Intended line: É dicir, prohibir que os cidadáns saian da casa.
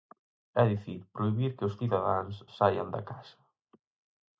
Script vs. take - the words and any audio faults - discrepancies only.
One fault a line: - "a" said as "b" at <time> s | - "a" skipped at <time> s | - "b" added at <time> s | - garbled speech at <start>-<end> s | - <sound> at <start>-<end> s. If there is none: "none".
none